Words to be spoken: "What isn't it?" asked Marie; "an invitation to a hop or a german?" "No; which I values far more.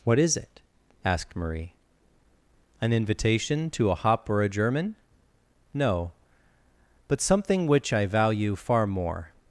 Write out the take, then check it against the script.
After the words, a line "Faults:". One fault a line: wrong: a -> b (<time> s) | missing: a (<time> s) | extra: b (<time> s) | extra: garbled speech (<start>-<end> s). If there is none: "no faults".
"What is it?" asked Marie; "an invitation to a hop or a german?" "No; but something which I value far more.
Faults:
wrong: isn't -> is (0.2 s)
extra: but something (7.1 s)
wrong: values -> value (8.1 s)